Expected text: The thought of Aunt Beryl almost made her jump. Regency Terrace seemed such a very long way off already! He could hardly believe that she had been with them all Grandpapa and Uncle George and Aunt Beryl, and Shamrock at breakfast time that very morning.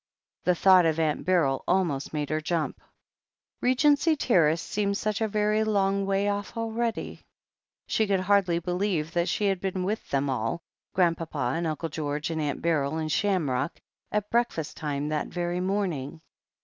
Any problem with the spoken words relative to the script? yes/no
yes